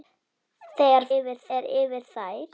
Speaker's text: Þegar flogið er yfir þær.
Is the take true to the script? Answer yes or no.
no